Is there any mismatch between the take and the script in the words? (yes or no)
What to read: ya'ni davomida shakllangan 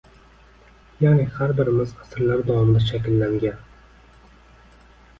yes